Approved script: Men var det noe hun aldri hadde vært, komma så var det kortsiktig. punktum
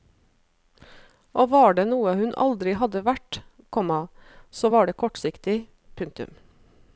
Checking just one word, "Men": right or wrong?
wrong